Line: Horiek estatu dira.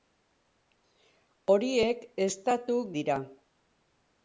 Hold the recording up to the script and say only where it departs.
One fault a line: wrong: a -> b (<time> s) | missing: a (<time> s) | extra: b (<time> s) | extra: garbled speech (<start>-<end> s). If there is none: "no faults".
no faults